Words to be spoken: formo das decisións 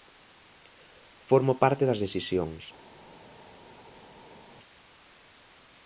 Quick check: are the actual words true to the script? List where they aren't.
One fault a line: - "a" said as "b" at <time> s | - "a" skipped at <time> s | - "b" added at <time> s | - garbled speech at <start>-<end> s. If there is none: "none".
- "parte" added at 1.6 s